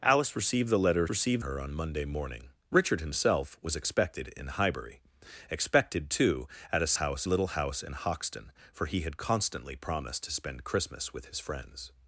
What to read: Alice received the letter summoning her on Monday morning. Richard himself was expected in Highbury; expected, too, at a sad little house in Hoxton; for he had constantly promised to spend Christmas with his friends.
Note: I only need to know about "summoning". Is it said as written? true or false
false